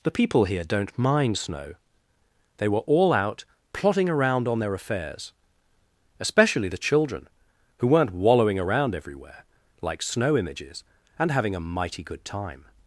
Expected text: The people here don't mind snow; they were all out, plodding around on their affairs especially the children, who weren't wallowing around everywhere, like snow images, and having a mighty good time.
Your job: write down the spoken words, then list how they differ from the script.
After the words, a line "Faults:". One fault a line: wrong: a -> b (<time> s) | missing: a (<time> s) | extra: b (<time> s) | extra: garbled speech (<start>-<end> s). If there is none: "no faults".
The people here don't mind snow; they were all out, plodding around on their affairs especially the children, who weren't wallowing around everywhere, like snow images, and having a mighty good time.
Faults:
no faults